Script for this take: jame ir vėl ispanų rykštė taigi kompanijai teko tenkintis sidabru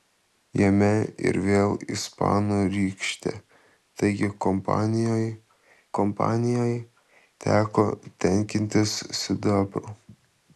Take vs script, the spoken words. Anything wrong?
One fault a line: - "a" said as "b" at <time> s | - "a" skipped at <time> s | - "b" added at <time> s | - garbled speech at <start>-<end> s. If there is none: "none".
- "kompanijai" added at 6.0 s